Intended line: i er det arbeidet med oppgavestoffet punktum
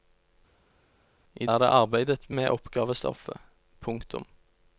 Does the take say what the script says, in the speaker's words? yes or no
yes